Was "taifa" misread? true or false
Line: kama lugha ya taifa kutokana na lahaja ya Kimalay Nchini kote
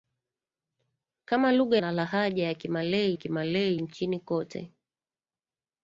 true